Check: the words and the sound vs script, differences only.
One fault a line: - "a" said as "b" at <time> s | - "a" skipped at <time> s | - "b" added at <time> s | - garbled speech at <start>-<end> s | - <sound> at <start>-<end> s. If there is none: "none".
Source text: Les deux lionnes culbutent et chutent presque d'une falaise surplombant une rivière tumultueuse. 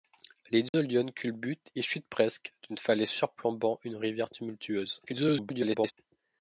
- dropout at 0.7-0.7 s
- garbled speech at 5.1-5.9 s